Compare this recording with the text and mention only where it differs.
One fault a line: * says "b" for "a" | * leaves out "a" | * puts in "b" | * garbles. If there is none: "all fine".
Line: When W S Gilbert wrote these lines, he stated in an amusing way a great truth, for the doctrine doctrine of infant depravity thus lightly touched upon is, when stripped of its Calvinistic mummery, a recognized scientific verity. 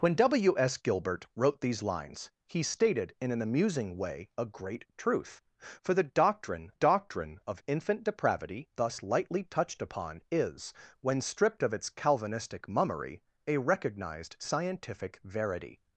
all fine